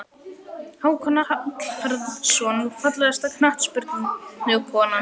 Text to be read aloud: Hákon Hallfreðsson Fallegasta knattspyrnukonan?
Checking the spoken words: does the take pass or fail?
pass